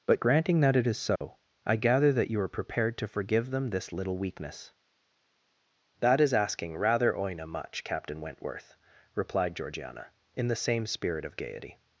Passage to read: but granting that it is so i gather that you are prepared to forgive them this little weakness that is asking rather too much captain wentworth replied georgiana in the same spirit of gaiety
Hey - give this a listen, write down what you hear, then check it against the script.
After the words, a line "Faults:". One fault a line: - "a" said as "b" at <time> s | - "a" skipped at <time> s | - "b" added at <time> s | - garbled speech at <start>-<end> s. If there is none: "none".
but granting that it is so i gather that you are prepared to forgive them this little weakness that is asking rather oina much captain wentworth replied georgiana in the same spirit of gaiety
Faults:
- "too" said as "oina" at 7.1 s